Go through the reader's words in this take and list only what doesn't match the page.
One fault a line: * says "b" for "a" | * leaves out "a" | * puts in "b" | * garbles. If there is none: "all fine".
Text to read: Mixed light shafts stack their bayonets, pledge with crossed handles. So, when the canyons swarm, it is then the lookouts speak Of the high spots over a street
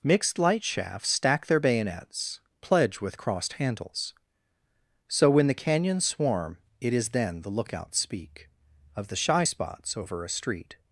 * says "shy" for "high"